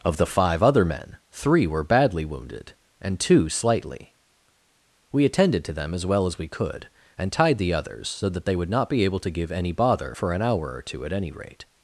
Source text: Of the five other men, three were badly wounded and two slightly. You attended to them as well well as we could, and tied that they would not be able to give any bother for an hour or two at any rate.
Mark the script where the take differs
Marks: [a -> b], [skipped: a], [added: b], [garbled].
Of the five other men, three were badly wounded and two slightly. [You -> We] attended to them as well [skipped: well] as we could, and tied [added: the others so] that they would not be able to give any bother for an hour or two at any rate.